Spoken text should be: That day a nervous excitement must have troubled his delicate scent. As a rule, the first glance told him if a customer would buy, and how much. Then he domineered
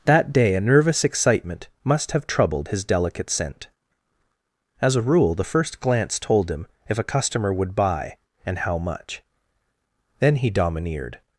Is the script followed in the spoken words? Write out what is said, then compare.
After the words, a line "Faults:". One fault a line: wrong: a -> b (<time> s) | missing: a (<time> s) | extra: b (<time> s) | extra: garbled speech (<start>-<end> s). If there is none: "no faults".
That day a nervous excitement must have troubled his delicate scent. As a rule, the first glance told him if a customer would buy, and how much. Then he domineered
Faults:
no faults